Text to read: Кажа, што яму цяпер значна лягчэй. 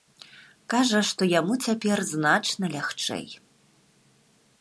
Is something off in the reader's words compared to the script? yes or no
no